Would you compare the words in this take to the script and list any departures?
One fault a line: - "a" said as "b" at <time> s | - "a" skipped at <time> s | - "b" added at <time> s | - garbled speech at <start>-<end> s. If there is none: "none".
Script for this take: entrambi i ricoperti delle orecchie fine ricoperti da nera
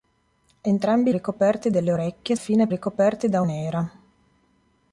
none